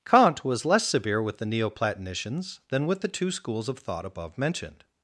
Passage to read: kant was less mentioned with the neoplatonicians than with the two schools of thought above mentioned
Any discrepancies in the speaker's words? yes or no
yes